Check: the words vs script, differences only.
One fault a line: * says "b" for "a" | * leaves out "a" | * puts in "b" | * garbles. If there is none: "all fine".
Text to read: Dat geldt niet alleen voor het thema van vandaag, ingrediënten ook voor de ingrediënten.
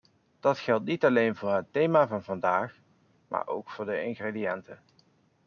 * says "maar" for "ingrediënten"